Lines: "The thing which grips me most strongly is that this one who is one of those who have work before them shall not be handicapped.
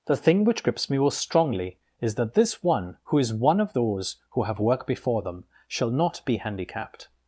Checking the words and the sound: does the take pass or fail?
pass